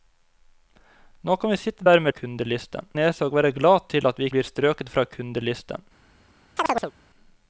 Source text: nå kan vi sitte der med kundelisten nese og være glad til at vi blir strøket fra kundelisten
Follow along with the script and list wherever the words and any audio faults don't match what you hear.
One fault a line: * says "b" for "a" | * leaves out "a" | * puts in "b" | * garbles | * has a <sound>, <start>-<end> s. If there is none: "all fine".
* has a chirp, 6.6-6.9 s